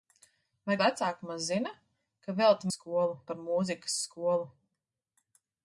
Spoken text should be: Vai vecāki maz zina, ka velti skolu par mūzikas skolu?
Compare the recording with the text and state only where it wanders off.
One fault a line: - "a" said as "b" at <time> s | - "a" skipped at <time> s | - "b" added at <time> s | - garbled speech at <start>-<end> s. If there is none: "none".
none